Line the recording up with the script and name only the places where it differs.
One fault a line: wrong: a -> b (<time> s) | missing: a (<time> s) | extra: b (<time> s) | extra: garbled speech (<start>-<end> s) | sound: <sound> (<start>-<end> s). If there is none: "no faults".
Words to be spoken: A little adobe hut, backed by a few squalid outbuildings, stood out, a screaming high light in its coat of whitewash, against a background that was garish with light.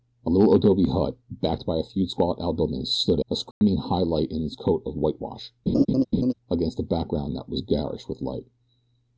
missing: out (3.2 s)
sound: dropout (3.5-3.6 s)
sound: laugh (5.7-6.3 s)